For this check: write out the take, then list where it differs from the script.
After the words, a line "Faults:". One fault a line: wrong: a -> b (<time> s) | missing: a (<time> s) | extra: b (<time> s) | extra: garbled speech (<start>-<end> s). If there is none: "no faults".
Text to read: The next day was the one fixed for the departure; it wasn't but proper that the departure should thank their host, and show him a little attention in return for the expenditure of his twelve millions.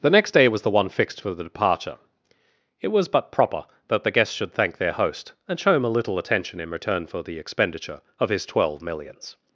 The next day was the one fixed for the departure; it was but proper that the guests should thank their host, and show him a little attention in return for the expenditure of his twelve millions.
Faults:
wrong: wasn't -> was (2.9 s)
wrong: departure -> guests (4.1 s)